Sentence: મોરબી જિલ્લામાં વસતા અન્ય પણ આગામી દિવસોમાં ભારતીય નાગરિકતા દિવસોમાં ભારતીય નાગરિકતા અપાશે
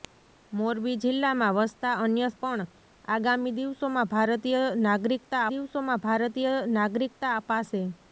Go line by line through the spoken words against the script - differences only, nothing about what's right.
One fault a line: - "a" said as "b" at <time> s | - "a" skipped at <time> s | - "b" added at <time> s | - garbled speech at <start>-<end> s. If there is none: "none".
none